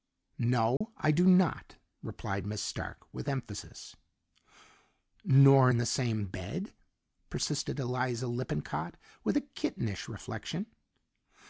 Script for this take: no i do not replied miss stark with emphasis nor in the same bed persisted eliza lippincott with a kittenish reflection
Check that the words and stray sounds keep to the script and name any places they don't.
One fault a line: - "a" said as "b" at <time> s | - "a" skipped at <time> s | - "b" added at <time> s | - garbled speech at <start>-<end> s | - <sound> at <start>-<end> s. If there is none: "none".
- dropout at 0.8-0.8 s